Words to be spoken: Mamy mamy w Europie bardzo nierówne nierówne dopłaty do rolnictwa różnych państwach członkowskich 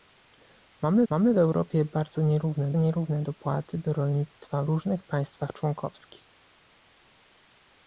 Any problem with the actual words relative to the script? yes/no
no